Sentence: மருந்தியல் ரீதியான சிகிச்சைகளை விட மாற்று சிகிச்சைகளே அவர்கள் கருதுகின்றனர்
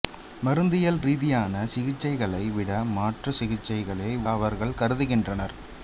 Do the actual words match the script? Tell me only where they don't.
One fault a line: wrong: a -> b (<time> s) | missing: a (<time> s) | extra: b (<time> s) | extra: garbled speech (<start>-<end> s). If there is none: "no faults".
no faults